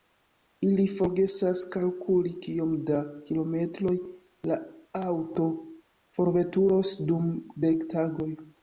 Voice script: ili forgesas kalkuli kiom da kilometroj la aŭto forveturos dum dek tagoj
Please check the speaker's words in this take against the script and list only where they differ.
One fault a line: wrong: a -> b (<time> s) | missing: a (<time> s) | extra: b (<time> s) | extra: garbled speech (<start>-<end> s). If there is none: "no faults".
no faults